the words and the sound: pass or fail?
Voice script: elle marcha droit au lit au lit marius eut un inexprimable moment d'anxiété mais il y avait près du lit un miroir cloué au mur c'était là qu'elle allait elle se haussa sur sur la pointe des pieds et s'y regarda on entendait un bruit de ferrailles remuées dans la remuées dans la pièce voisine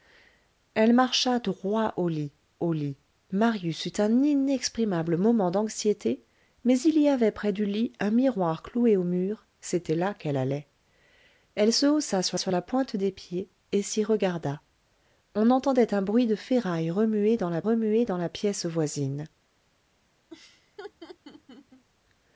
fail